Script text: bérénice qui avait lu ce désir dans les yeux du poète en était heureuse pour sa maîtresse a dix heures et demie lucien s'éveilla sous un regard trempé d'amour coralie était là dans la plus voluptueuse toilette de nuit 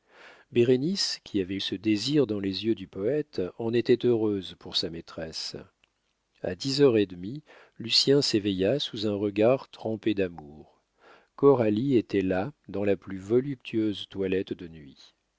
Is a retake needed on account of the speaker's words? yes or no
yes